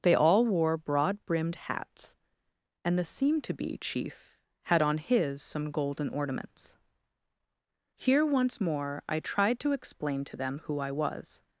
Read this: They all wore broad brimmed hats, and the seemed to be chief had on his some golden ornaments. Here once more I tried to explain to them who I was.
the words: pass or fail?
pass